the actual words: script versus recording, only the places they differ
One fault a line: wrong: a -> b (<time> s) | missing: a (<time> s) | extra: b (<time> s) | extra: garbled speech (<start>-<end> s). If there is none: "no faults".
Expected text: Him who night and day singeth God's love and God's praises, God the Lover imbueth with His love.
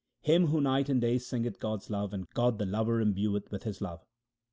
missing: God's praises (2.2 s)